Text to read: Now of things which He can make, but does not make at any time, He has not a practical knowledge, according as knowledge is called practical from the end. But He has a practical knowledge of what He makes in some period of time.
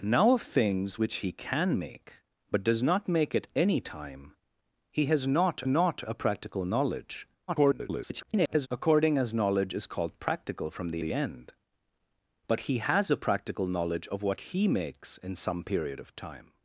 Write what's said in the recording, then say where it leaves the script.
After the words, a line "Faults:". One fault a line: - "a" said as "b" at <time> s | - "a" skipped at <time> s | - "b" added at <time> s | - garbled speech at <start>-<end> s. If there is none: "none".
Now of things which He can make, but does not make at any time, He has not not a practical knowledge, [garbled] according as knowledge is called practical from the the end. But He has a practical knowledge of what He makes in some period of time.
Faults:
- "not" added at 5.7 s
- garbled speech at 7.5-8.7 s
- "the" added at 11.0 s